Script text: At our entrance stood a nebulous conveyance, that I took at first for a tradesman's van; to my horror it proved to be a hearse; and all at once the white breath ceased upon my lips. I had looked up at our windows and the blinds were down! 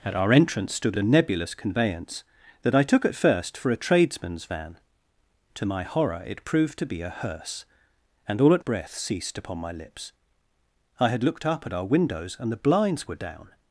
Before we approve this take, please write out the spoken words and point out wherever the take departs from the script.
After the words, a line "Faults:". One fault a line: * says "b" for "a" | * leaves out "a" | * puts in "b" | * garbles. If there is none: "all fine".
At our entrance stood a nebulous conveyance, that I took at first for a tradesman's van; to my horror it proved to be a hearse; and all at breath ceased upon my lips. I had looked up at our windows and the blinds were down!
Faults:
* leaves out "once the white"